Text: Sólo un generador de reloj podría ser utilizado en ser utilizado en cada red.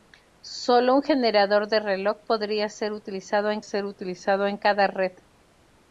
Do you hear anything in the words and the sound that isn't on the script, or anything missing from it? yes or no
no